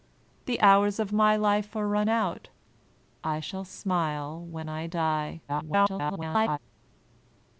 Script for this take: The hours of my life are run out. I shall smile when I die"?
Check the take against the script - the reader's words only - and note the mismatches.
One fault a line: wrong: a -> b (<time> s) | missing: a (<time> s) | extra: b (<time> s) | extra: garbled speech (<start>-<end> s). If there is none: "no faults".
extra: garbled speech (5.5-6.6 s)